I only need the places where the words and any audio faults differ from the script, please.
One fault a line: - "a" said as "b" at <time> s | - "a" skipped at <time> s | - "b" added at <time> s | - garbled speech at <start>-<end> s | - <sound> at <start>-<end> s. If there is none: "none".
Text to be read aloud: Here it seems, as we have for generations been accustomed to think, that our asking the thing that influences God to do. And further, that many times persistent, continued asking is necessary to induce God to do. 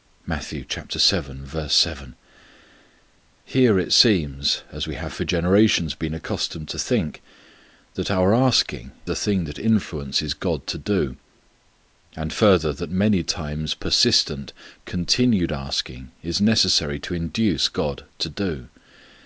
none